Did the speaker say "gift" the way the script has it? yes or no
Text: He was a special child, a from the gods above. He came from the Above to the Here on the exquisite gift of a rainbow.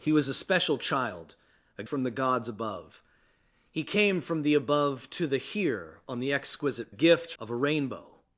yes